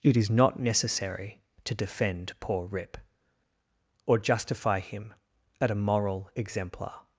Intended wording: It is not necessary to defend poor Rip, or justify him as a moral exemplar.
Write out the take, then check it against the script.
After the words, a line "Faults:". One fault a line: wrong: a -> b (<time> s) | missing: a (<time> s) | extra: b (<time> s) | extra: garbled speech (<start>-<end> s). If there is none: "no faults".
It is not necessary to defend poor Rip, or justify him at a moral exemplar.
Faults:
wrong: as -> at (5.6 s)